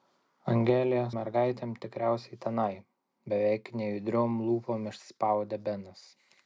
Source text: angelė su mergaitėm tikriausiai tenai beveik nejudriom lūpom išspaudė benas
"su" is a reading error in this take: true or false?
true